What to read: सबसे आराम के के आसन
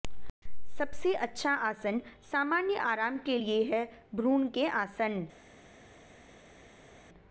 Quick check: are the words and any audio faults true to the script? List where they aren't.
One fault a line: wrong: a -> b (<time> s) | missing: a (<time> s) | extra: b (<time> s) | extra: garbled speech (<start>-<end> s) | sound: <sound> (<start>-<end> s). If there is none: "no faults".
extra: अच्छा आसन सामान्य (1.1 s)
extra: लिए है भ्रूण (3.3 s)